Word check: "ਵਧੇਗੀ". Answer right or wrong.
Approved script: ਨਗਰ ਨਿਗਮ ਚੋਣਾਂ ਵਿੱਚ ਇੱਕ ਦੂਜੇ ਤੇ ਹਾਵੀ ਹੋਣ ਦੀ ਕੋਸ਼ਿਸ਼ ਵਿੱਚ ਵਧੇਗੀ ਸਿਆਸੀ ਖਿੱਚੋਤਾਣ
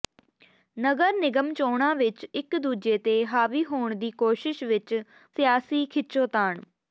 wrong